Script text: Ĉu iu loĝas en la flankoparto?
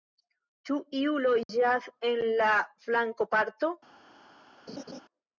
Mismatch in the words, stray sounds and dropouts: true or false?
true